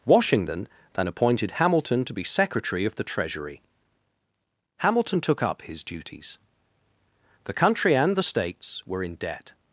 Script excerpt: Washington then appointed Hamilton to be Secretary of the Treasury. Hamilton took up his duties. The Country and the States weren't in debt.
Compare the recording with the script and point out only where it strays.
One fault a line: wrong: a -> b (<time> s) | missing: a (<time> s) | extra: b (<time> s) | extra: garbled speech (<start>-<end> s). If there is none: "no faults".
wrong: weren't -> were (8.8 s)